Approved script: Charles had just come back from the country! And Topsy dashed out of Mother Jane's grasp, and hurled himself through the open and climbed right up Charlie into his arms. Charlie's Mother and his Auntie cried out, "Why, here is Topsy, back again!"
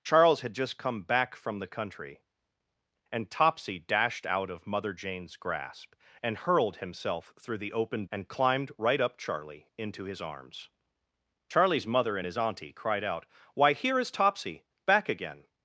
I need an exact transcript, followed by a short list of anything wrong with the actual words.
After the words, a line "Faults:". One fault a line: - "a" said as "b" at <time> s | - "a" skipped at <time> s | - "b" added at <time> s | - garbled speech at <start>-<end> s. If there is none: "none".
Charles had just come back from the country! And Topsy dashed out of Mother Jane's grasp, and hurled himself through the open and climbed right up Charlie into his arms. Charlie's Mother and his Auntie cried out, "Why, here is Topsy, back again!"
Faults:
none